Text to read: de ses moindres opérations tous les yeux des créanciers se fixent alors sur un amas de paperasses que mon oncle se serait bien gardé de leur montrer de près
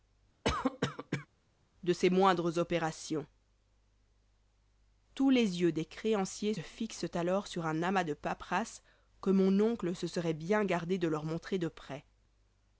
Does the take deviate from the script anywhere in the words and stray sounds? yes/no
yes